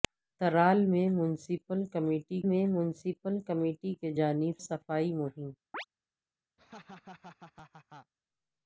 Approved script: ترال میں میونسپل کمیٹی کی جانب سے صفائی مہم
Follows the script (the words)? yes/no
no